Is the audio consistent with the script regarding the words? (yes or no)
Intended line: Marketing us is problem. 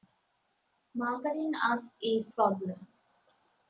yes